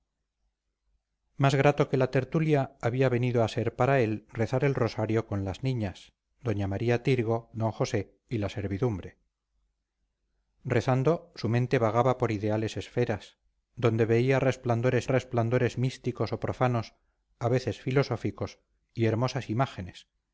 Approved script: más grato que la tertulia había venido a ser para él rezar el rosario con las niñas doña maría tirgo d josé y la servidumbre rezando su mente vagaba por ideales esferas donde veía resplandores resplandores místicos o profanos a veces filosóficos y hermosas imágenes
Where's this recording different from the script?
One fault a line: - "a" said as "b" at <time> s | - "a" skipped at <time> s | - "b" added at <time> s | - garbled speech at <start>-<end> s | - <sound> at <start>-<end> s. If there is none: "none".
none